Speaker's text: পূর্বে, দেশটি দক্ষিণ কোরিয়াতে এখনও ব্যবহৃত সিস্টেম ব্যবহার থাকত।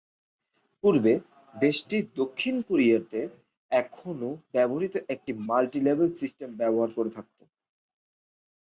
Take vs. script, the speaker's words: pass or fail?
fail